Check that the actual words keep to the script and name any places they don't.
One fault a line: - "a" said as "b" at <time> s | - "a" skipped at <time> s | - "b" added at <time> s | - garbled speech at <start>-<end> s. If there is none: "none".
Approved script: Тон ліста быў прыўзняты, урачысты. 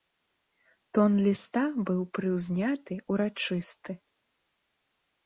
none